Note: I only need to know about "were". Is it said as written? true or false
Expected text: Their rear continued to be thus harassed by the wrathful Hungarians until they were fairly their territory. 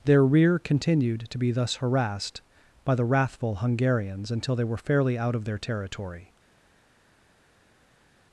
true